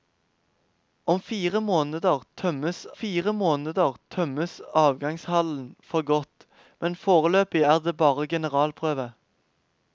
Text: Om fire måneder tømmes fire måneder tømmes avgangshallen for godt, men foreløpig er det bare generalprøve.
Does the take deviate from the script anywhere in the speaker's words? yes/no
no